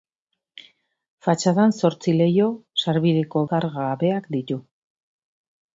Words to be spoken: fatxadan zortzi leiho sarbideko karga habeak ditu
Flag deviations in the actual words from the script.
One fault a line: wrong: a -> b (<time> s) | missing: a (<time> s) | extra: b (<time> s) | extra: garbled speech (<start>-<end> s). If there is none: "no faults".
no faults